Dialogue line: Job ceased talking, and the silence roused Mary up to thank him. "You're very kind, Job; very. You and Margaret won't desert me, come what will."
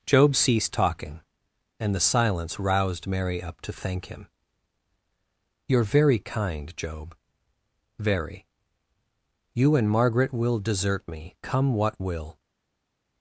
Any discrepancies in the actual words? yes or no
yes